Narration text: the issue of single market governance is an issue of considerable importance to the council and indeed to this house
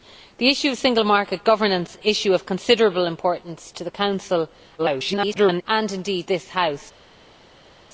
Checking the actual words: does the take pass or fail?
fail